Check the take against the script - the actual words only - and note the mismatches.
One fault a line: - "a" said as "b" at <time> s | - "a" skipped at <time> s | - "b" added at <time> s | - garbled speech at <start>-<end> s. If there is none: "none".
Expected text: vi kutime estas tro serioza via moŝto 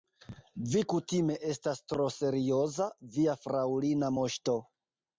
- "fraŭlina" added at 3.5 s